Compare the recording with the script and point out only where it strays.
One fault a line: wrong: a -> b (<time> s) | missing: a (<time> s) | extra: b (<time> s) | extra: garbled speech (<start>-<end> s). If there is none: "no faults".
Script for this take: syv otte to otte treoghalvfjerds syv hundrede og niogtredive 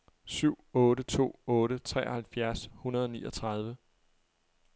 missing: syv (2.7 s)